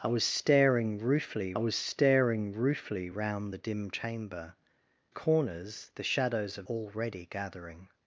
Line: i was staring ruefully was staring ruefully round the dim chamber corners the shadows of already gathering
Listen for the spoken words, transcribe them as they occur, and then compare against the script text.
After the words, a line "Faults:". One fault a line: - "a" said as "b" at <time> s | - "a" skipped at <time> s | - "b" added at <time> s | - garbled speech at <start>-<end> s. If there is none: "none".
i was staring ruefully was staring ruefully round the dim chamber corners the shadows of already gathering
Faults:
none